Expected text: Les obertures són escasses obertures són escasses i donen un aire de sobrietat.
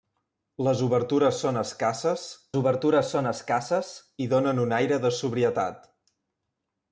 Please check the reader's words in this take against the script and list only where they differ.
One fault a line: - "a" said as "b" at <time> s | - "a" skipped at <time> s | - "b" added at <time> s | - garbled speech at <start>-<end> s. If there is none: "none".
none